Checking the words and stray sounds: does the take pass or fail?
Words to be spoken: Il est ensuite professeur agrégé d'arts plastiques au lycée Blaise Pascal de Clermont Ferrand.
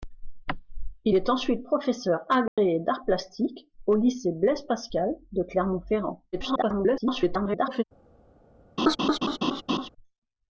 fail